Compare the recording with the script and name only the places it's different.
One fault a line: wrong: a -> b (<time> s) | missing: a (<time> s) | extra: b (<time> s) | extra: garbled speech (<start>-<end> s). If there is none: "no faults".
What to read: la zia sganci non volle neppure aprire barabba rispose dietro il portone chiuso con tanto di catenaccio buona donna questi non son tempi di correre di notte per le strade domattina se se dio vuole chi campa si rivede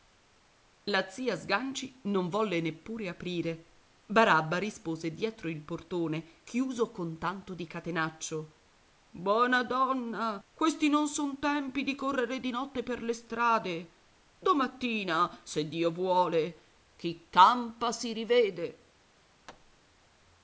missing: se (15.7 s)